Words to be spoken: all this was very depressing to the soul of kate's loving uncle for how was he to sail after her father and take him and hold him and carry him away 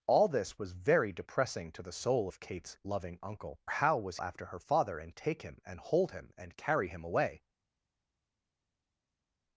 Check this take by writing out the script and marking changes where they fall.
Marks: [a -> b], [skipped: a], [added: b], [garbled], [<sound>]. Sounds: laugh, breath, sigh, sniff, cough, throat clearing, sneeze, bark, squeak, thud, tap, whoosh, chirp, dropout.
all this was very depressing to the soul of kate's loving uncle [skipped: for] how was [skipped: he to sail] after her father and take him and hold him and carry him away